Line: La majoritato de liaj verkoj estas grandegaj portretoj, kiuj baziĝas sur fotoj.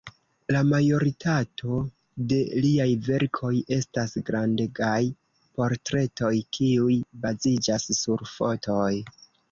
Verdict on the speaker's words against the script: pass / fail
pass